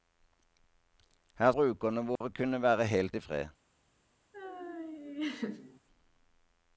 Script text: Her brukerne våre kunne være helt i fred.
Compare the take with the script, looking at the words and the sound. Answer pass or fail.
fail